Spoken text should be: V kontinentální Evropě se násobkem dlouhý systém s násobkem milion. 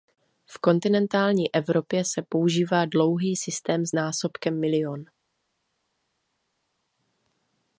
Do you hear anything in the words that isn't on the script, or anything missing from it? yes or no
yes